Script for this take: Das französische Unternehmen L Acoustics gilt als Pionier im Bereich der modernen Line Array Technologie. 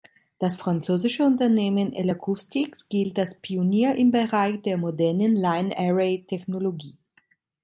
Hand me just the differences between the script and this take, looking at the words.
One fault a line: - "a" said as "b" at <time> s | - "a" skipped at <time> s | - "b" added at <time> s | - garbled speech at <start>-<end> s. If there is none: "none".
none